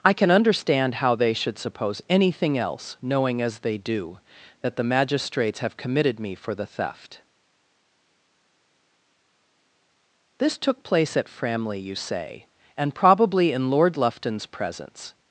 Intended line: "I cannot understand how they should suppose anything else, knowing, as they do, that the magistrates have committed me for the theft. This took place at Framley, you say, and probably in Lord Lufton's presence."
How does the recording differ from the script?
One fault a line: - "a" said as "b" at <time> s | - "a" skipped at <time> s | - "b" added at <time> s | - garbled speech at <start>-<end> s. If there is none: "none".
- "cannot" said as "can" at 0.1 s